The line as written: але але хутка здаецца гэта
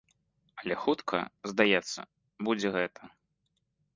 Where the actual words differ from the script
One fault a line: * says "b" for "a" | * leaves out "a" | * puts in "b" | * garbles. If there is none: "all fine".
* leaves out "але"
* puts in "будзе"